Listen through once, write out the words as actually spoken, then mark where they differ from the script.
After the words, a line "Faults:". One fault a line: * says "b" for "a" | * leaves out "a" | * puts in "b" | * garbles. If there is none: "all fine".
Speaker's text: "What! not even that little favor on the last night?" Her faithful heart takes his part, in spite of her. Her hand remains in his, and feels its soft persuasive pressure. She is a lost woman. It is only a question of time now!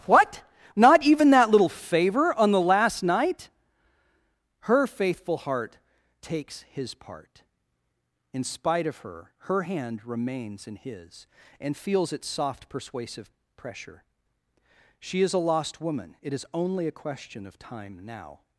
"What! not even that little favor on the last night?" Her faithful heart takes his part, in spite of her. Her hand remains in his, and feels its soft persuasive pressure. She is a lost woman. It is only a question of time now!
Faults:
all fine